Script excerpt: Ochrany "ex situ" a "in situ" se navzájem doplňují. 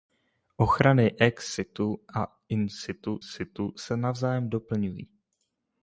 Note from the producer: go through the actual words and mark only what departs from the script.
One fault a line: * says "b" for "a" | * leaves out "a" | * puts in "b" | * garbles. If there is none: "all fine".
* puts in "situ"